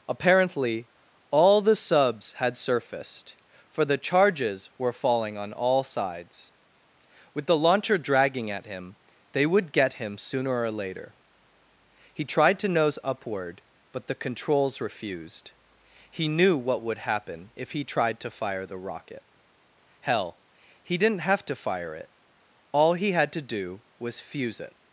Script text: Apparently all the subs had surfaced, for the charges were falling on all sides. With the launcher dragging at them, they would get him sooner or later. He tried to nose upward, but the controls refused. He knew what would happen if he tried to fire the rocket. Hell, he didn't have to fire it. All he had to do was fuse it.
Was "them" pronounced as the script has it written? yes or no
no